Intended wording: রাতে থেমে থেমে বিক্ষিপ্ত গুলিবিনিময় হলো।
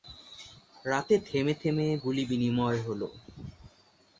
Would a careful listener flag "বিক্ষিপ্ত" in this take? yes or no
yes